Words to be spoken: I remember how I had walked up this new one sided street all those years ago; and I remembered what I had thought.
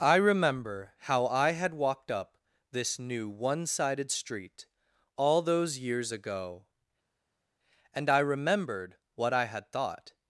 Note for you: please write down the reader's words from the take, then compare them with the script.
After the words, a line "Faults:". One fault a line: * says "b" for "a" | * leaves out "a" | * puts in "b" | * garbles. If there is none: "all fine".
I remember how I had walked up this new one sided street all those years ago; and I remembered what I had thought.
Faults:
all fine